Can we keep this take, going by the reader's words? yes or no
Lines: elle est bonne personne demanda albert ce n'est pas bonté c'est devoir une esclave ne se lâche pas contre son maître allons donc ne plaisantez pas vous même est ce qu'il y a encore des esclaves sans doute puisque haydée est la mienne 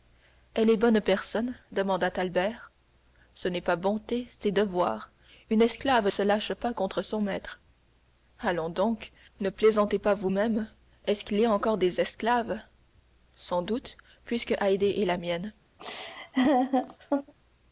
no